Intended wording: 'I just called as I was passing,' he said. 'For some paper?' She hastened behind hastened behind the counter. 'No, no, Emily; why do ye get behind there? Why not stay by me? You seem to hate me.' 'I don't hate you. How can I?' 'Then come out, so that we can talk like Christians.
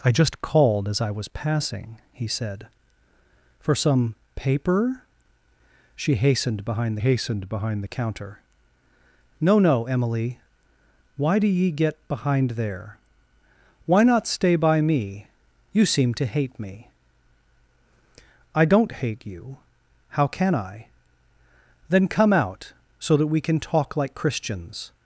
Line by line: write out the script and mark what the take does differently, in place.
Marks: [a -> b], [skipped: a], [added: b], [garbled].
'I just called as I was passing,' he said. 'For some paper?' She hastened behind hastened behind the counter. 'No, no, Emily; why do ye get behind there? Why not stay by me? You seem to hate me.' 'I don't hate you. How can I?' 'Then come out, so that we can talk like Christians.